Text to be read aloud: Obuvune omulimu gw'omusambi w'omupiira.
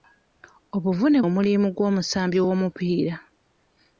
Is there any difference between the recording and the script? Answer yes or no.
no